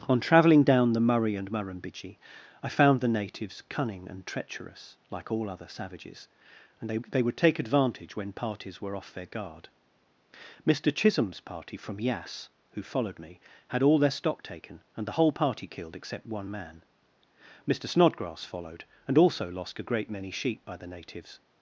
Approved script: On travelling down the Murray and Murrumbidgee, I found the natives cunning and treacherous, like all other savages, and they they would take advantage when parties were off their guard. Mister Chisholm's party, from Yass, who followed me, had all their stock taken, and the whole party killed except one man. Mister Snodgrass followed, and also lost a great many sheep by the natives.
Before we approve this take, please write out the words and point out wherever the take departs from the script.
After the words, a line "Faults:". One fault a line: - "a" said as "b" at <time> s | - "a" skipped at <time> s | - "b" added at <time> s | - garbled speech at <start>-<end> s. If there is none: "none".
On travelling down the Murray and Murrumbidgee, I found the natives cunning and treacherous, like all other savages, and they they would take advantage when parties were off their guard. Mister Chisholm's party, from Yass, who followed me, had all their stock taken, and the whole party killed except one man. Mister Snodgrass followed, and also lost a great many sheep by the natives.
Faults:
none